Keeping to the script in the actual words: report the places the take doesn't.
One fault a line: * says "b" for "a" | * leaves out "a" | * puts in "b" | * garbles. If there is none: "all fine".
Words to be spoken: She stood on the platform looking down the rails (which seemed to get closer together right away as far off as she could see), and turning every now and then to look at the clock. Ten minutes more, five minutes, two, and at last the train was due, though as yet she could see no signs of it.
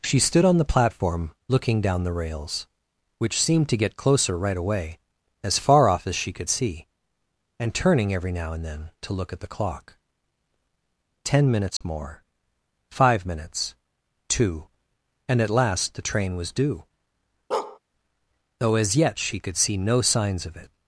* leaves out "together"